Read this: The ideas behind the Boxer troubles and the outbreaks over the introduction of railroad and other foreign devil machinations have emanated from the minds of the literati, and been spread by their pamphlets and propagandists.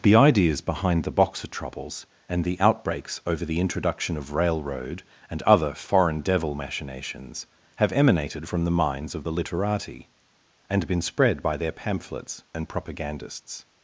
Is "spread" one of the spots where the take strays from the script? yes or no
no